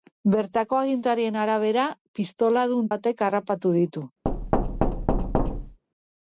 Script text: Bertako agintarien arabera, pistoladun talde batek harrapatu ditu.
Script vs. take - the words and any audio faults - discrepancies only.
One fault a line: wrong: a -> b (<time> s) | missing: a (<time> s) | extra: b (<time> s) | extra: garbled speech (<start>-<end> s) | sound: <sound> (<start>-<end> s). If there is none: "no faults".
missing: talde (2.9 s)
sound: thud (4.2-5.8 s)